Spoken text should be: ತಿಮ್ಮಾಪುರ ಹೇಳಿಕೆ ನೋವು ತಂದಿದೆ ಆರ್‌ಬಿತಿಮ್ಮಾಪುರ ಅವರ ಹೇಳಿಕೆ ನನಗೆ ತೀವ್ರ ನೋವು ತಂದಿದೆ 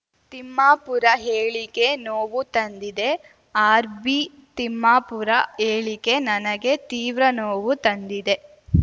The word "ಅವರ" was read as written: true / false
false